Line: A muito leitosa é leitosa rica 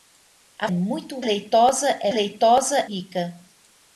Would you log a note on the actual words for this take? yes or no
no